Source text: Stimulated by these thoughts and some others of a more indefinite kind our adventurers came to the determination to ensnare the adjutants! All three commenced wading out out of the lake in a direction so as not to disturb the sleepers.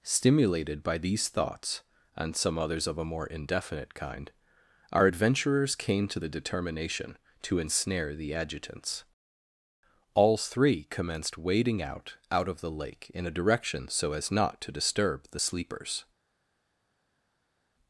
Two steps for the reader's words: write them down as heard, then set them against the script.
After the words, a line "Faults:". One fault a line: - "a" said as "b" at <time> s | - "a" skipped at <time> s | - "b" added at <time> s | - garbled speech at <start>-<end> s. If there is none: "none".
Stimulated by these thoughts and some others of a more indefinite kind our adventurers came to the determination to ensnare the adjutants! All three commenced wading out out of the lake in a direction so as not to disturb the sleepers.
Faults:
none